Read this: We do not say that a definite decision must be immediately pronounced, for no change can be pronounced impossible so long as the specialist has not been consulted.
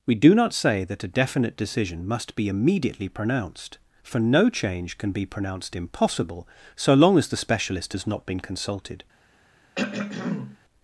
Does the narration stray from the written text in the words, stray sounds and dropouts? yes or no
yes